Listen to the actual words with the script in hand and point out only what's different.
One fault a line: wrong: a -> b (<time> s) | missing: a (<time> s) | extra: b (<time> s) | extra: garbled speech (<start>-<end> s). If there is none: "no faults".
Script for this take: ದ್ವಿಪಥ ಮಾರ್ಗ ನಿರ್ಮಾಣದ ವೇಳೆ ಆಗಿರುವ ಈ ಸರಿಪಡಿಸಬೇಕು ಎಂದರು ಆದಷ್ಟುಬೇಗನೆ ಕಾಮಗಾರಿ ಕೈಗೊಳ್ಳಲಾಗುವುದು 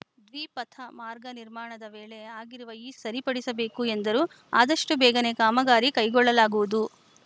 no faults